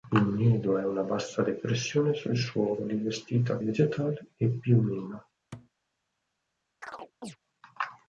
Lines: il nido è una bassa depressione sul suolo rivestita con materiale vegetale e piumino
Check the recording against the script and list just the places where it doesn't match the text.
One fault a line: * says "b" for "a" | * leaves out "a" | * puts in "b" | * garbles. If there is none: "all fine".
* leaves out "con materiale"